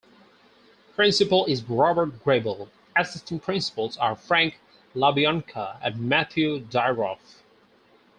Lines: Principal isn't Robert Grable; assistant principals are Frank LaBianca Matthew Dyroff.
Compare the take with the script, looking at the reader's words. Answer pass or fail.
fail